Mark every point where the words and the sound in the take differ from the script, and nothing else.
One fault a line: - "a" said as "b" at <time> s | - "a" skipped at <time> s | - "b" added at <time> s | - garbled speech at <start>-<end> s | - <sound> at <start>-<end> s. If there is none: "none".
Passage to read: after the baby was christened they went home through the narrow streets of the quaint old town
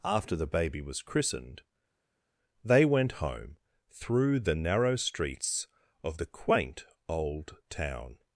none